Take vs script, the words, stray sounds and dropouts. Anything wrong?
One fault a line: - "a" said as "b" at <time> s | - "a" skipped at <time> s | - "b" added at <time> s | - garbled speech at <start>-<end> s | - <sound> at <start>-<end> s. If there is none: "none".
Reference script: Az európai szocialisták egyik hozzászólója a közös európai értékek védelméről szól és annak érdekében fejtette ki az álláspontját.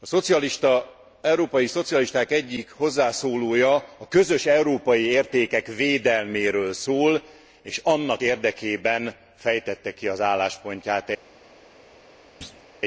- thud at 12.4-12.6 s